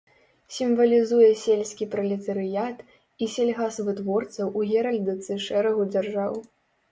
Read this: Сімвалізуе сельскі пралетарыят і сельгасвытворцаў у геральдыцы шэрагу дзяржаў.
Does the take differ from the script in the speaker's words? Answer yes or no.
no